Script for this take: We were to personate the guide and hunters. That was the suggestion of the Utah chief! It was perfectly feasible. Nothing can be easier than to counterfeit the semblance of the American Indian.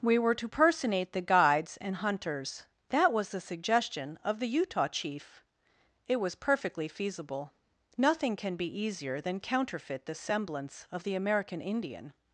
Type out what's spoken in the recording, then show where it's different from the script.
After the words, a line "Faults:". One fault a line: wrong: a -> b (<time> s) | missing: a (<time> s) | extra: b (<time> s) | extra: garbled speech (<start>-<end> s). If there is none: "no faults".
We were to personate the guides and hunters. That was the suggestion of the Utah chief! It was perfectly feasible. Nothing can be easier than counterfeit the semblance of the American Indian.
Faults:
wrong: guide -> guides (1.2 s)
missing: to (9.4 s)